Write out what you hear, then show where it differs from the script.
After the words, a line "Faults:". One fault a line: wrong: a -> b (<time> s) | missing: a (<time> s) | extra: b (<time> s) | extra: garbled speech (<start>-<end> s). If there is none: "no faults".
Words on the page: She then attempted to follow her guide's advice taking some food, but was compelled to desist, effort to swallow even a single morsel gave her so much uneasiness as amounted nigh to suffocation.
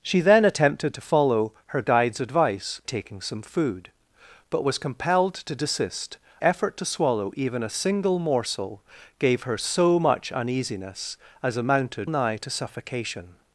She then attempted to follow her guide's advice taking some food, but was compelled to desist, effort to swallow even a single morsel gave her so much uneasiness as amounted nigh to suffocation.
Faults:
no faults